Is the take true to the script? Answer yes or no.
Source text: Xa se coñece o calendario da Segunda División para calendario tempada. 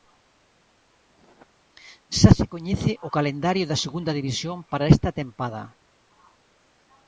no